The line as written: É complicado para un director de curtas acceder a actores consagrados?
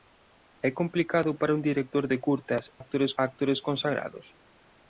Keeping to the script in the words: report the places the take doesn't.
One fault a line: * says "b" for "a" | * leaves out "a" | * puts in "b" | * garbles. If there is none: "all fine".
* says "actores" for "acceder"